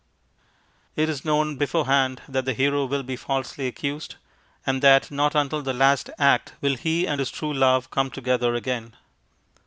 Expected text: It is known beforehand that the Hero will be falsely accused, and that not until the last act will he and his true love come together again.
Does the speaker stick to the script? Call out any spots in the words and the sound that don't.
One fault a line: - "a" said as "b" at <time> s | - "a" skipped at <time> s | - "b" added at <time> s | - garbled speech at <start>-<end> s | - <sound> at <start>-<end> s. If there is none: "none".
none